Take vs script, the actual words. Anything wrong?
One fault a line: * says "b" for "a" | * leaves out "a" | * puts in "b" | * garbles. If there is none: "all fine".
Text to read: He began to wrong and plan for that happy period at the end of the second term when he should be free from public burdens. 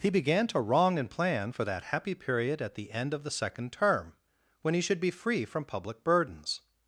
all fine